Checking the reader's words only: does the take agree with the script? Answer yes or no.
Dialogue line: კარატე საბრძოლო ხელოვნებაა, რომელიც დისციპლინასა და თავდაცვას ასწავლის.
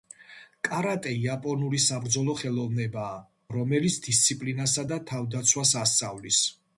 no